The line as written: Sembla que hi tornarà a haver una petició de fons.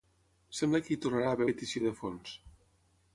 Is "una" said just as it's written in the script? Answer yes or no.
no